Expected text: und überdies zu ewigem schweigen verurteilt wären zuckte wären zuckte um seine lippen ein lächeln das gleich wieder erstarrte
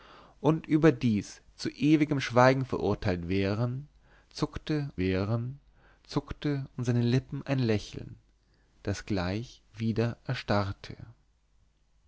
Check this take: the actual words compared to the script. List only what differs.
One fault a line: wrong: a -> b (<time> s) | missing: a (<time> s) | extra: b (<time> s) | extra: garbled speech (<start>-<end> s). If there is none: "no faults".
no faults